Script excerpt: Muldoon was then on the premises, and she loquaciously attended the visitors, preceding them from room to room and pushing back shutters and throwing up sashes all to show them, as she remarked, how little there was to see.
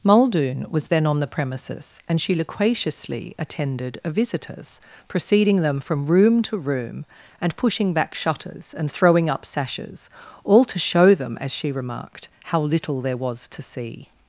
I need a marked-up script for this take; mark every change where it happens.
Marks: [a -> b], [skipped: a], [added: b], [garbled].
Muldoon was then on the premises, and she loquaciously attended [the -> a] visitors, preceding them from room to room and pushing back shutters and throwing up sashes all to show them, as she remarked, how little there was to see.